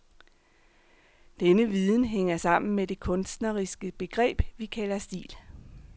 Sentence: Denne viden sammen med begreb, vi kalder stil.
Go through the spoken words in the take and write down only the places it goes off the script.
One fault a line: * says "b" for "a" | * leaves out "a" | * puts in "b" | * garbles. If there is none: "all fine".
* puts in "hænger"
* puts in "det kunstneriske"